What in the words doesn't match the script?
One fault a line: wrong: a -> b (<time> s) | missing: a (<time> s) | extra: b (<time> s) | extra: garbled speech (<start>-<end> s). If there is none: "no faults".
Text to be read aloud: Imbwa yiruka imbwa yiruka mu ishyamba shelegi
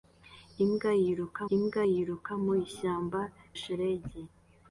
no faults